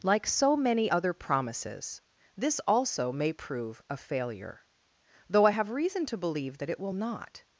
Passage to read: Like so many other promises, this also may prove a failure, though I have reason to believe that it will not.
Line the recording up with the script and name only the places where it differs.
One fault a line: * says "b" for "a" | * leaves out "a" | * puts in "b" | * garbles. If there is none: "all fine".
all fine